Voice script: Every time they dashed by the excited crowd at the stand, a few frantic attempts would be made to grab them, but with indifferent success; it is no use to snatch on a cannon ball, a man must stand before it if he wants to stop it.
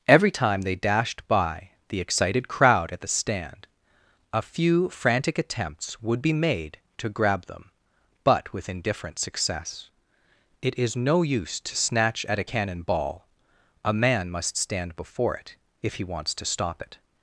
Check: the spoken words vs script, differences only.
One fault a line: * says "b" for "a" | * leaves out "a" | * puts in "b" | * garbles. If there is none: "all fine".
* says "at" for "on"